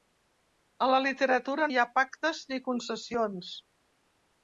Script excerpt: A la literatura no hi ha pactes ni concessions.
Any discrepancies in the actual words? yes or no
yes